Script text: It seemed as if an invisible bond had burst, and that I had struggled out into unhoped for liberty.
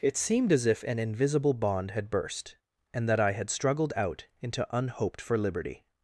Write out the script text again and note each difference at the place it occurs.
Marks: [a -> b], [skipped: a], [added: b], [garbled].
It seemed as if an invisible bond had burst, and that I had struggled out into unhoped for liberty.